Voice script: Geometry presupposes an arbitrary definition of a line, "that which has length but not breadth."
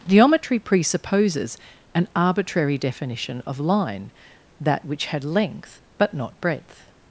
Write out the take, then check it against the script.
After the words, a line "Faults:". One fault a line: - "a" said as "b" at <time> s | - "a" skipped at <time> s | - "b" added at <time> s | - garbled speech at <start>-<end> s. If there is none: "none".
Geometry presupposes an arbitrary definition of line, "that which had length but not breadth."
Faults:
- "a" skipped at 3.6 s
- "has" said as "had" at 5.1 s